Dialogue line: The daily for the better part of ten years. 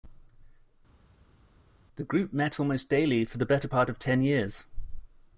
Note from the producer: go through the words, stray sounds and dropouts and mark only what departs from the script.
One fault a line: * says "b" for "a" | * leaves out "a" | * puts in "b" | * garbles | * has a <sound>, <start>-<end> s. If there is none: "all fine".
* puts in "group met almost"